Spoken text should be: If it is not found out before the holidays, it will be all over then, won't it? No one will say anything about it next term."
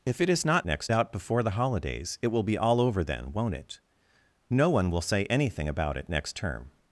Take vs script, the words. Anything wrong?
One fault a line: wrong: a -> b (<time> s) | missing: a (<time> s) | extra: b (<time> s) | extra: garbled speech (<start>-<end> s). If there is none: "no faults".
wrong: found -> next (0.7 s)